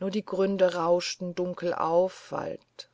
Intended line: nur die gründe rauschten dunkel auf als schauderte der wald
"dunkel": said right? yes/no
yes